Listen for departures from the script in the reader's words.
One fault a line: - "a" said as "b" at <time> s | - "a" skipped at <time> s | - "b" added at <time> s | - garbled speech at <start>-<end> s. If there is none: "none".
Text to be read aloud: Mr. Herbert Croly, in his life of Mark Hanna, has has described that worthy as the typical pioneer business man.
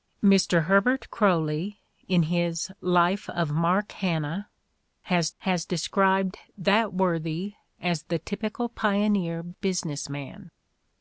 none